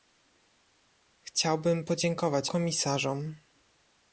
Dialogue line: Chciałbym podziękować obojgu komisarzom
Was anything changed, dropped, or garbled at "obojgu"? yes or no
yes